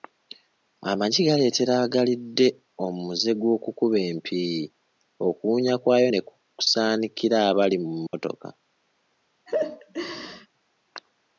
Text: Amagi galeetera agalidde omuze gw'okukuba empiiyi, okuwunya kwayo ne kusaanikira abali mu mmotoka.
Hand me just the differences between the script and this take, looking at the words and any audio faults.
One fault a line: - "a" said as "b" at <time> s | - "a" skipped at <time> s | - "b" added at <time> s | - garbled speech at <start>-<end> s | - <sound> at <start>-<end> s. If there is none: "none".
- dropout at 8.1-8.1 s
- laugh at 9.5-10.5 s